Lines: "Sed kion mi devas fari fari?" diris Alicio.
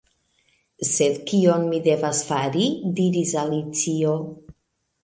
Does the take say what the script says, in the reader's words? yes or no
no